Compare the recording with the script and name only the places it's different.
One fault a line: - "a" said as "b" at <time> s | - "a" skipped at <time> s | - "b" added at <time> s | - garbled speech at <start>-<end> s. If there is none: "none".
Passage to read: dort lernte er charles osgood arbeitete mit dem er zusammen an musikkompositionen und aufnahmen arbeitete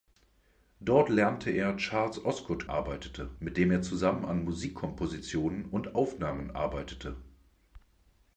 none